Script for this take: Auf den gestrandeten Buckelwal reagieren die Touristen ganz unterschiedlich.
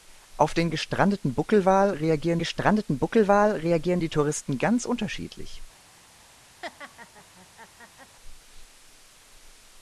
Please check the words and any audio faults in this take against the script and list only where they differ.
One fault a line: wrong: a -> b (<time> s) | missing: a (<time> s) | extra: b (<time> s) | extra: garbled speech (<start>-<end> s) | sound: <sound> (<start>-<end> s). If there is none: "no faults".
extra: gestrandeten Buckelwal reagieren (2.4 s)
sound: laugh (6.6-8.2 s)